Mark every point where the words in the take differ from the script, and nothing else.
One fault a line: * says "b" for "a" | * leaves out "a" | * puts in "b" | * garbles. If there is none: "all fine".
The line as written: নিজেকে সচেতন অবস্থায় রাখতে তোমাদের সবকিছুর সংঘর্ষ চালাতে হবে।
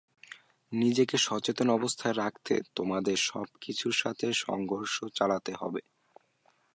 * puts in "সাথে"